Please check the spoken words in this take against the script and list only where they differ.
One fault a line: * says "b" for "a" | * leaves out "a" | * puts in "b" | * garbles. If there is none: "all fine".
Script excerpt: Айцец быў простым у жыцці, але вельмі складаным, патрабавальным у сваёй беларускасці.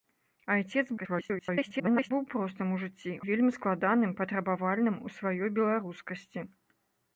* garbles
* leaves out "але"